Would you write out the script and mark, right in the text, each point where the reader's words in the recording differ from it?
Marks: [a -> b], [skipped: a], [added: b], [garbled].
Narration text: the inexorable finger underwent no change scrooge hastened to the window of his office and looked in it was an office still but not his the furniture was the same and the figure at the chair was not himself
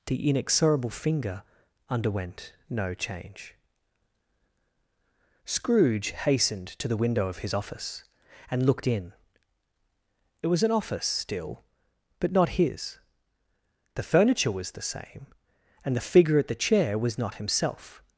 the inexorable finger underwent no change scrooge hastened to the window of his office and looked in it was an office still but not his the furniture was the same and the figure at the chair was not himself